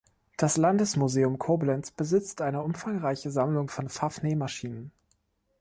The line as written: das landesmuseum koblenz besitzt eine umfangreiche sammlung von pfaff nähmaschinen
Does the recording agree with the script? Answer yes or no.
yes